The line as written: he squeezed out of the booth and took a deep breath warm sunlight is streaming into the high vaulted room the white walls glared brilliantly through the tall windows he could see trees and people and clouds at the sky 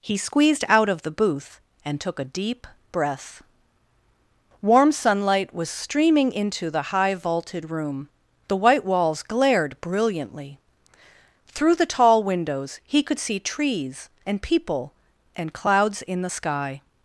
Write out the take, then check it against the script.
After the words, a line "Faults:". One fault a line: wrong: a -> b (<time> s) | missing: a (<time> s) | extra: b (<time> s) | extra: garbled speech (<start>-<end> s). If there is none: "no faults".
he squeezed out of the booth and took a deep breath warm sunlight was streaming into the high vaulted room the white walls glared brilliantly through the tall windows he could see trees and people and clouds in the sky
Faults:
wrong: is -> was (5.5 s)
wrong: at -> in (16.0 s)